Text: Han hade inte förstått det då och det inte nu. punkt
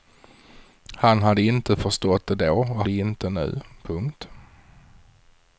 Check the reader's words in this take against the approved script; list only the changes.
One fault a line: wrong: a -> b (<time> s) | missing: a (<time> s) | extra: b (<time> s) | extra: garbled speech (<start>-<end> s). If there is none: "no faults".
no faults